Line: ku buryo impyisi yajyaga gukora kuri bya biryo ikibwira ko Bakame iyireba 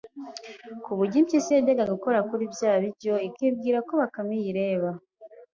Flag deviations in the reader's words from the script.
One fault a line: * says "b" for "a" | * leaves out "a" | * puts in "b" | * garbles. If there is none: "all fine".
all fine